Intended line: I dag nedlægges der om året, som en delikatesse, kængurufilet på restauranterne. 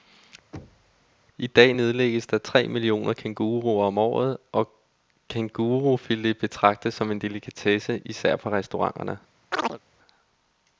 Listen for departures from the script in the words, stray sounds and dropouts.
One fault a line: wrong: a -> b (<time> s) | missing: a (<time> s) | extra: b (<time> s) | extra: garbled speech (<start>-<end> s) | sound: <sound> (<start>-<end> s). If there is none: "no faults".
sound: thud (0.5-1.1 s)
extra: tre millioner kænguruer (2.4 s)
extra: og kængurufilet betragtes (4.5 s)
wrong: kængurufilet -> især (8.0 s)
sound: chirp (9.5-9.8 s)